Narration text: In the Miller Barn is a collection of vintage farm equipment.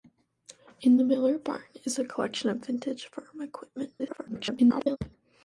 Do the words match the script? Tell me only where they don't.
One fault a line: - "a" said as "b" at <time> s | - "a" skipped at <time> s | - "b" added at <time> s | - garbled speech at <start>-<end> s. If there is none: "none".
- garbled speech at 4.0-5.0 s